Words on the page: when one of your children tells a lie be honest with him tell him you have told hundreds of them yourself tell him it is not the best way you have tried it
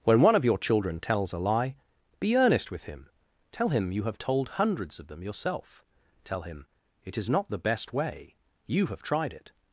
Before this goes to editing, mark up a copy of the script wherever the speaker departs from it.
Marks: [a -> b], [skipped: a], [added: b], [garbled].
when one of your children tells a lie be [honest -> earnest] with him tell him you have told hundreds of them yourself tell him it is not the best way you have tried it